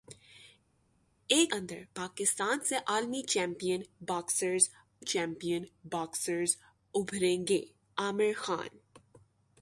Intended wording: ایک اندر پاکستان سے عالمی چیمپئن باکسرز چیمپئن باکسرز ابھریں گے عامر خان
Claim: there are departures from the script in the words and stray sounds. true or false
false